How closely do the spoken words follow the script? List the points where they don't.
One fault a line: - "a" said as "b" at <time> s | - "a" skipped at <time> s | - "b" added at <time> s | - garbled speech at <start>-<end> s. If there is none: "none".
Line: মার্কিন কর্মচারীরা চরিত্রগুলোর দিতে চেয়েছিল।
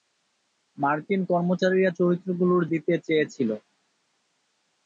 none